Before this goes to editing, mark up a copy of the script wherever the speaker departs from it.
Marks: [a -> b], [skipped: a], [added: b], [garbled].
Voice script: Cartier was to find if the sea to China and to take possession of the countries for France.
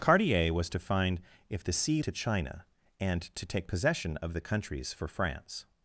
Cartier was to find if the sea to China and to take possession of the countries for France.